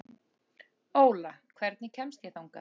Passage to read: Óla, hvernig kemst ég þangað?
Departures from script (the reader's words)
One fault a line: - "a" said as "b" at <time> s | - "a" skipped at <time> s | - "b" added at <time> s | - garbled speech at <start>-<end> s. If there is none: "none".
none